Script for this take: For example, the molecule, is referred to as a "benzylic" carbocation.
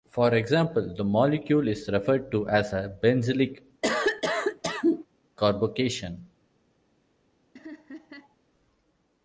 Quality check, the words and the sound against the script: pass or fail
fail